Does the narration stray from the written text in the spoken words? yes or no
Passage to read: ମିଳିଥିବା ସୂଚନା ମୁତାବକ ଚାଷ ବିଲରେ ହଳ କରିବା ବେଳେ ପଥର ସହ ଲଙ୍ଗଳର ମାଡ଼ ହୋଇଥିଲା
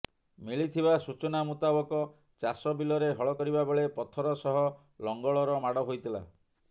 no